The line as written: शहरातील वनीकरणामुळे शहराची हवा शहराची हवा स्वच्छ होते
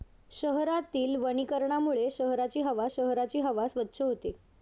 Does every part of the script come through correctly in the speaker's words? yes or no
yes